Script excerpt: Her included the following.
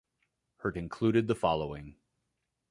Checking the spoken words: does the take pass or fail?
pass